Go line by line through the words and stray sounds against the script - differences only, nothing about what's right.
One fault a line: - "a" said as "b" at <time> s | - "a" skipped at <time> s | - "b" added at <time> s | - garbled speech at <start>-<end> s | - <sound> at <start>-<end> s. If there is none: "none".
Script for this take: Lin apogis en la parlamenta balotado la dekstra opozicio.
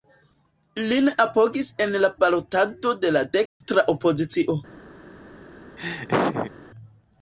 - "parlamenta" skipped at 2.1 s
- dropout at 3.5-3.6 s
- laugh at 5.8-6.5 s